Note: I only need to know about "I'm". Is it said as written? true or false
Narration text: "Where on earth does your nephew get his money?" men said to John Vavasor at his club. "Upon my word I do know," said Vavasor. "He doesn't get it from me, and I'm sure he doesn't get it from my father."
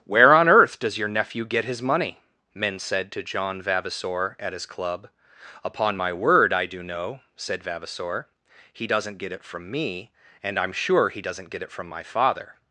true